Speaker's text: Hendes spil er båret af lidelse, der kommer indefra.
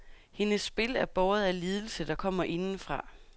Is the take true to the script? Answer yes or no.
yes